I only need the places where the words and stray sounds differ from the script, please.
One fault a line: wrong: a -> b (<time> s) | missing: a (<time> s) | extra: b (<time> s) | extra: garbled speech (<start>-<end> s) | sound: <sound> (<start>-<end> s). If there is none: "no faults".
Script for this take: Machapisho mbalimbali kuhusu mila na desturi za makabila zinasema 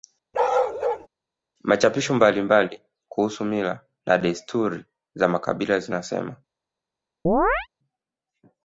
sound: bark (0.3-1.1 s)
sound: chirp (7.3-7.7 s)